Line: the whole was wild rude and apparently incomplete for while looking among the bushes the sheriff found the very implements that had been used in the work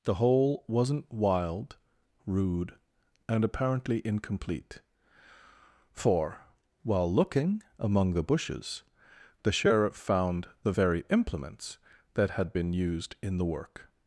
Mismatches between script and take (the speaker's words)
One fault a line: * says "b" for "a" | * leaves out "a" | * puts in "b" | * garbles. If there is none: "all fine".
* says "wasn't" for "was"